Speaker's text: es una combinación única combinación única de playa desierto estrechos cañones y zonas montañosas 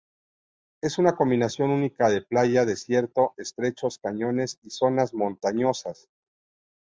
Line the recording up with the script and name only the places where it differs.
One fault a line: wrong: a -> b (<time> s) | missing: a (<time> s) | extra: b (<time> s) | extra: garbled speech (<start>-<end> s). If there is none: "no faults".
missing: combinación única (2.1 s)